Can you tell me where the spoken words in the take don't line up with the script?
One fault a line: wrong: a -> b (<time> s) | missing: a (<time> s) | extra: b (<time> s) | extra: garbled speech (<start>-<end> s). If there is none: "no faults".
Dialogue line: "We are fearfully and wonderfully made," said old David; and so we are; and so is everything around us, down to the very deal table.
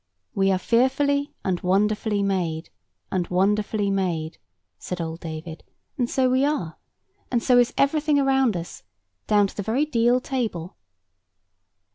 extra: and wonderfully made (3.1 s)